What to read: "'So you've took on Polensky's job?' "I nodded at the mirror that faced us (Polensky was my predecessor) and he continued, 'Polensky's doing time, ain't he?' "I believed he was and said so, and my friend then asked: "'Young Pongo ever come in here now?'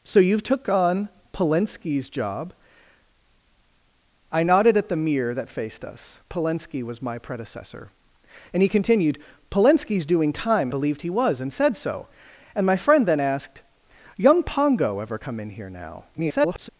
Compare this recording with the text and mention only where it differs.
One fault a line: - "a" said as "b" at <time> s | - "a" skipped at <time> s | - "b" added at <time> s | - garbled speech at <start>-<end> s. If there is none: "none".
- "ain't he I" skipped at 10.7 s
- garbled speech at 16.1-16.7 s